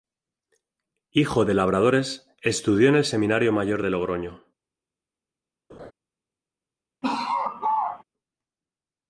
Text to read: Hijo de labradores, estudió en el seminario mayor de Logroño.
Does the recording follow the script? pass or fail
pass